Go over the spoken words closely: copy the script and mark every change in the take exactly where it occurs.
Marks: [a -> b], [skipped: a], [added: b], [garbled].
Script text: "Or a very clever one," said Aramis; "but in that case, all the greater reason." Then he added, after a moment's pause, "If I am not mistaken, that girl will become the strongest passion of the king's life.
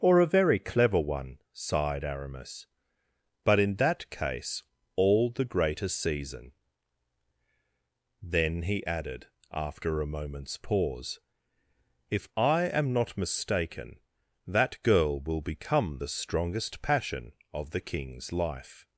"Or a very clever one," [said -> sighed] Aramis; "but in that case, all the greater [reason." -> season] Then he added, after a moment's pause, "If I am not mistaken, that girl will become the strongest passion of the king's life.